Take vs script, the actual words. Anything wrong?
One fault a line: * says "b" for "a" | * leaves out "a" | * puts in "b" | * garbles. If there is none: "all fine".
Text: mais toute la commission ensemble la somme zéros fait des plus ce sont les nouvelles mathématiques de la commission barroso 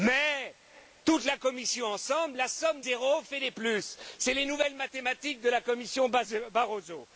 all fine